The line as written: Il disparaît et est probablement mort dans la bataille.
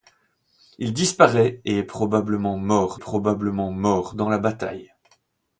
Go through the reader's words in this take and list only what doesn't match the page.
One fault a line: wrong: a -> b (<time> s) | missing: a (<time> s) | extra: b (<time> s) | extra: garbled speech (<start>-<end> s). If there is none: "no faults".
extra: probablement mort (3.0 s)